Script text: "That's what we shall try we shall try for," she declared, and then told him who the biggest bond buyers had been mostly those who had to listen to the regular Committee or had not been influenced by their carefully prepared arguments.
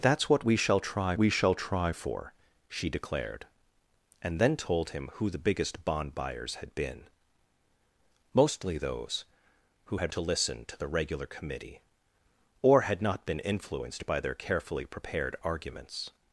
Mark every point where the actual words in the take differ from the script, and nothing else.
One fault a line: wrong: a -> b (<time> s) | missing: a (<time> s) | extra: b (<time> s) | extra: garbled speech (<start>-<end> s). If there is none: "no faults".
no faults